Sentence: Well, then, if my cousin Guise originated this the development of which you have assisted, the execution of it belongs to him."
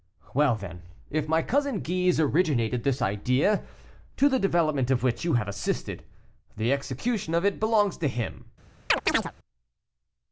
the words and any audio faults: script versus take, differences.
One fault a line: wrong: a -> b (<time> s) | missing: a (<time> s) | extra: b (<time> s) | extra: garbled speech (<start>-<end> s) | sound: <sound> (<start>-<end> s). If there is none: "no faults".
extra: idea to (3.0 s)
sound: chirp (8.9-9.3 s)